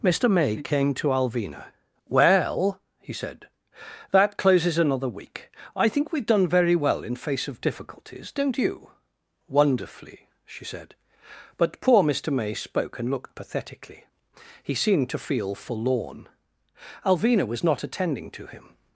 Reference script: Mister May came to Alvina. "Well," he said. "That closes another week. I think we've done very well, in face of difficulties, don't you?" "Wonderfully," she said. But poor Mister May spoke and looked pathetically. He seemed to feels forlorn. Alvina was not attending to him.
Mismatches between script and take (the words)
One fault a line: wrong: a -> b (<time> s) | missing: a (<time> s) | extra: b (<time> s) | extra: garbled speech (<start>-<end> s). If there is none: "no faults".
wrong: feels -> feel (15.3 s)